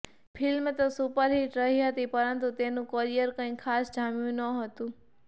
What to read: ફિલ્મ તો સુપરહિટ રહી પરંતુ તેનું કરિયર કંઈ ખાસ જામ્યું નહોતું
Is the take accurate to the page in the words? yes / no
no